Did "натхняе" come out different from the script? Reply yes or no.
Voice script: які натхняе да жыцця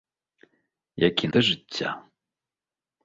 yes